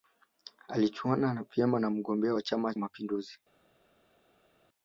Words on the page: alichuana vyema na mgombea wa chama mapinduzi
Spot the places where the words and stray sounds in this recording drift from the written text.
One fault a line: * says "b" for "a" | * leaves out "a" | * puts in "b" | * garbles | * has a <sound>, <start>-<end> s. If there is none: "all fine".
all fine